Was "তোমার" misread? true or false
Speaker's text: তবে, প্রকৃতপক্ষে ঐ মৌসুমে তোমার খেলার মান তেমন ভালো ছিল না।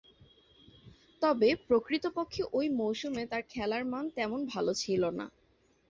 true